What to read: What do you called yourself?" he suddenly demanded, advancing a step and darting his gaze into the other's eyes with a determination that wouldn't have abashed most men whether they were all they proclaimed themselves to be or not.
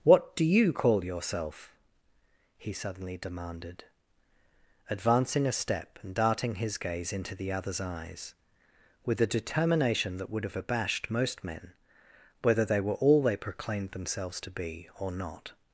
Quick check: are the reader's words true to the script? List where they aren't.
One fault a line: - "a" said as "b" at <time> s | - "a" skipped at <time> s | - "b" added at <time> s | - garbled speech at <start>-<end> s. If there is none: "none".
- "called" said as "call" at 0.7 s
- "wouldn't" said as "would" at 10.3 s